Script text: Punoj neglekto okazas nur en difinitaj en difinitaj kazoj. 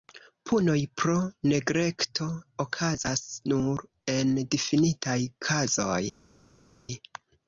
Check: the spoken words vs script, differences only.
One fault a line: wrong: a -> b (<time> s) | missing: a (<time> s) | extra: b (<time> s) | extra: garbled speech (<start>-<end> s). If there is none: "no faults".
extra: pro (1.0 s)
missing: en difinitaj (5.2 s)